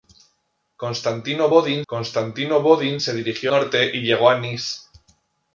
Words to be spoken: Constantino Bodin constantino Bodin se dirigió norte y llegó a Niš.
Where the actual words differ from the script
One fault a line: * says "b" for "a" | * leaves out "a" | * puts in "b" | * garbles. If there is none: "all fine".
all fine